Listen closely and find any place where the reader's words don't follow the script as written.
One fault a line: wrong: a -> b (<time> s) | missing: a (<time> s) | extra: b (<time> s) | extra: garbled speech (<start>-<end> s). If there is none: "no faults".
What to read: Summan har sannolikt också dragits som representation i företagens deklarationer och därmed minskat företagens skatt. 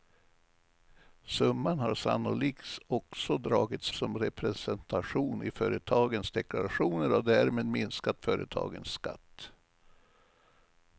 no faults